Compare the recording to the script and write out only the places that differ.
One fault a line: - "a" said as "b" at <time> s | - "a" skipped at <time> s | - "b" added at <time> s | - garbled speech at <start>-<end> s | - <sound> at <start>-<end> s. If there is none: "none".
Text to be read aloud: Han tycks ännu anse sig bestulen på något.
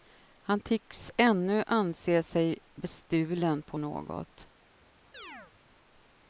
- chirp at 5.1-5.5 s